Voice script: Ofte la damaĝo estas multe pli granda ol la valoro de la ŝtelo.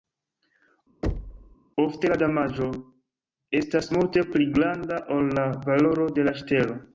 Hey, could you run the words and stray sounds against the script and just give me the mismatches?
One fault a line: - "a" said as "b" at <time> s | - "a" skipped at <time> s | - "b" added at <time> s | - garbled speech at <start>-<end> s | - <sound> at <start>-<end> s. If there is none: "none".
- thud at 1.0-1.6 s